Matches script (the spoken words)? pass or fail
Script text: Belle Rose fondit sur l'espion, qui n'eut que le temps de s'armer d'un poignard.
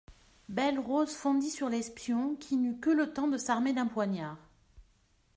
pass